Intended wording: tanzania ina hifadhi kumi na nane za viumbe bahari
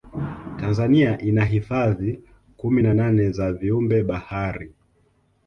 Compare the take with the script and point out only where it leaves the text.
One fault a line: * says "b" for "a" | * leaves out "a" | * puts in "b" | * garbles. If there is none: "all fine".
all fine